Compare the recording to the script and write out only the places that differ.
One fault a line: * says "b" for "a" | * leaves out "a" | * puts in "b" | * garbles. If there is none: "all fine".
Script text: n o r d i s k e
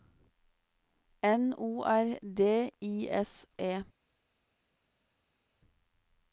* leaves out "k"